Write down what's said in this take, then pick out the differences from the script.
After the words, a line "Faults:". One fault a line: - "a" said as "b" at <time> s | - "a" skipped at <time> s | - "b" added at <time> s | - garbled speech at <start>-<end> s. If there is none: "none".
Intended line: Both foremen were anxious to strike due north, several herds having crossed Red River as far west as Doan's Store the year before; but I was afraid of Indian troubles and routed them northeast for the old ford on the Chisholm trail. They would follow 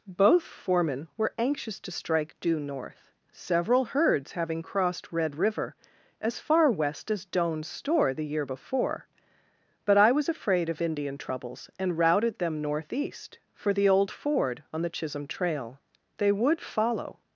Both foremen were anxious to strike due north, several herds having crossed Red River as far west as Doan's Store the year before; but I was afraid of Indian troubles and routed them northeast for the old ford on the Chisholm trail. They would follow
Faults:
none